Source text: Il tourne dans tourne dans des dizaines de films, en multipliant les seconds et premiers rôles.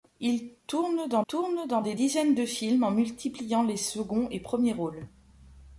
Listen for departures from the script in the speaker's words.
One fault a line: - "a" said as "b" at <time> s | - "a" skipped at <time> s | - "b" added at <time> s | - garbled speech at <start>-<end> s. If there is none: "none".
none